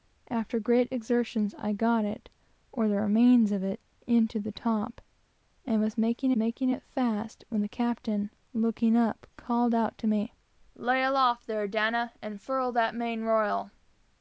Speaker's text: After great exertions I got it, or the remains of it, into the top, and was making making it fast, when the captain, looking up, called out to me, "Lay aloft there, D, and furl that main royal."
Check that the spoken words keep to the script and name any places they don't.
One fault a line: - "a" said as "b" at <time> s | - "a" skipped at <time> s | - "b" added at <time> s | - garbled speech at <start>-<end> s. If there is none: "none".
none